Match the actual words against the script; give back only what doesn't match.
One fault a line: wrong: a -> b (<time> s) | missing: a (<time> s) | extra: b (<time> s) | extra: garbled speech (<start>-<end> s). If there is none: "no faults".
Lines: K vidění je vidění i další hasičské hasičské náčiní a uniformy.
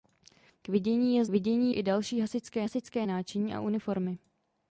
no faults